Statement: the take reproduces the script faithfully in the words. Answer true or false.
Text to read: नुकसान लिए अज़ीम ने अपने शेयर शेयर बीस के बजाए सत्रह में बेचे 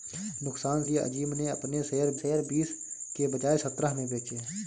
true